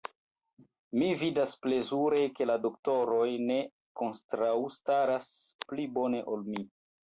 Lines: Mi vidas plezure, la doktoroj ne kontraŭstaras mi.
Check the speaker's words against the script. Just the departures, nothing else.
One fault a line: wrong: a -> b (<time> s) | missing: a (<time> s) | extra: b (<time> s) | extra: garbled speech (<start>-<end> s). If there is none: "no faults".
extra: ke (2.4 s)
extra: pli bone ol (5.7 s)